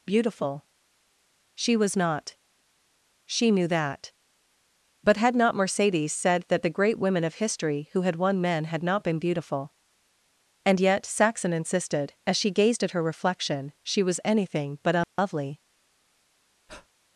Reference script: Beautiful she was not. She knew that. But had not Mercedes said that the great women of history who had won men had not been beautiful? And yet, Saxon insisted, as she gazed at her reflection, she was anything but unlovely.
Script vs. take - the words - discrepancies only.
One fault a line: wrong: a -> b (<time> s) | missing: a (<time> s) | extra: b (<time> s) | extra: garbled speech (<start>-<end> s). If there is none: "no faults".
no faults